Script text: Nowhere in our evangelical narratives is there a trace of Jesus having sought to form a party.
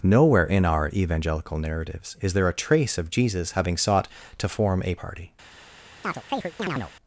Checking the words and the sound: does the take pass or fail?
fail